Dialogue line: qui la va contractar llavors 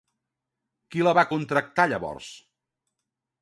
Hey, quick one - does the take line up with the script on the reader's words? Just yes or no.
yes